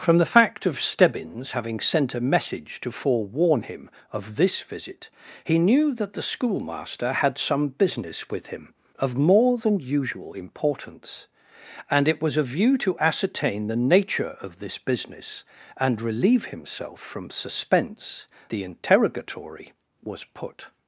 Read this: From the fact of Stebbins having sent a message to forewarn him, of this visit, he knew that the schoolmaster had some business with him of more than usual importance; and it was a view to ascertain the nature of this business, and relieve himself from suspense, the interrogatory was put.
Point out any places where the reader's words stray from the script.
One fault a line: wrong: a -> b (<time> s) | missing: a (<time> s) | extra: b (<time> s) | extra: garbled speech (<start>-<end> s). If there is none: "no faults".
no faults